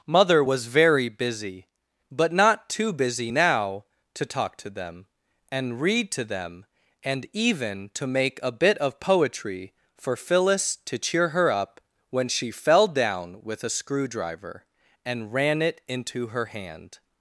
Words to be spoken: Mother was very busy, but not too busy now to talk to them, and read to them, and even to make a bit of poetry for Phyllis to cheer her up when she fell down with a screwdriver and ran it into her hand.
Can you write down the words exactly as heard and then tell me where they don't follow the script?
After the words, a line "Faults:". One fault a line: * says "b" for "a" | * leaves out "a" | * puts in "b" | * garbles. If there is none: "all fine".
Mother was very busy, but not too busy now to talk to them, and read to them, and even to make a bit of poetry for Phyllis to cheer her up when she fell down with a screwdriver and ran it into her hand.
Faults:
all fine